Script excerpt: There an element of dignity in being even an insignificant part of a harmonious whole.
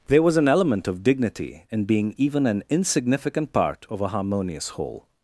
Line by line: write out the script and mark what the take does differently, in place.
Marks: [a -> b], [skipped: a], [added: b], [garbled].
There [added: was] an element of dignity in being even an insignificant part of a harmonious whole.